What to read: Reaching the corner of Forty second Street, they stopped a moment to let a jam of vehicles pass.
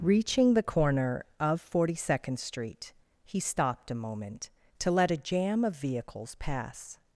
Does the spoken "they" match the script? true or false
false